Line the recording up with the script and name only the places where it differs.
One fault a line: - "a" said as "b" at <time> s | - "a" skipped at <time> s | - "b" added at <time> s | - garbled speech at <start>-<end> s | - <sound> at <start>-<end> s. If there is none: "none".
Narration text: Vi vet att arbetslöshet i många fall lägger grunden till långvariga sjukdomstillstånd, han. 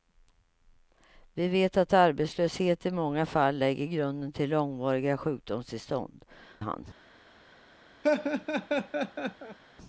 - laugh at 8.0-9.6 s